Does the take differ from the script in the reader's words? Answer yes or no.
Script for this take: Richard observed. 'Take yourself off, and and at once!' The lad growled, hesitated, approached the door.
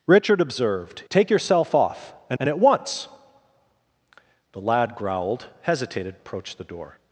no